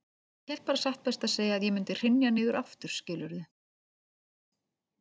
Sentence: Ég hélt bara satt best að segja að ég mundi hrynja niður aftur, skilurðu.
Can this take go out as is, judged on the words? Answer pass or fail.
pass